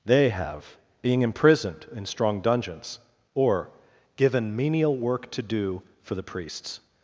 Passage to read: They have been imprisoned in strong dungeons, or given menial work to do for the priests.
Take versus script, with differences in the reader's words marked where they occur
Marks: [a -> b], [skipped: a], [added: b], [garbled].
They have [been -> being] imprisoned in strong dungeons, or given menial work to do for the priests.